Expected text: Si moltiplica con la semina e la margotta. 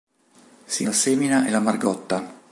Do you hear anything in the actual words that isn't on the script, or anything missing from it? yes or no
yes